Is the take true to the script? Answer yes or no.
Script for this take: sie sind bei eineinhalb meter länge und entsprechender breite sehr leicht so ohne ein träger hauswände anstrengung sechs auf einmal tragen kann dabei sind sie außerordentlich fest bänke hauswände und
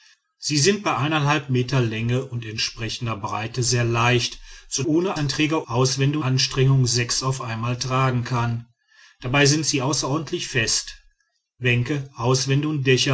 yes